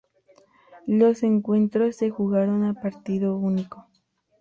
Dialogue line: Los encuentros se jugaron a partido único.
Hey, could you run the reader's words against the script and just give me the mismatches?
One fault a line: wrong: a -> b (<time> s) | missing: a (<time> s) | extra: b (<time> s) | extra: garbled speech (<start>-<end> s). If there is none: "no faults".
no faults